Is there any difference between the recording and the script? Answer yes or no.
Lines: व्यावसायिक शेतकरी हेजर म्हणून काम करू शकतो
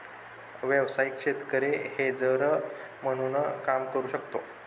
no